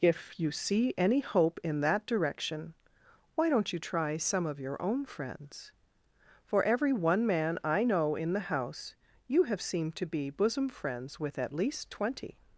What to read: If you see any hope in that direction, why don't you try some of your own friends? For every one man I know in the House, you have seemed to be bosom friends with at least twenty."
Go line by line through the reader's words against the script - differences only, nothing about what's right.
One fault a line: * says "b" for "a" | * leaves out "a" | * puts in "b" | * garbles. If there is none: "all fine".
all fine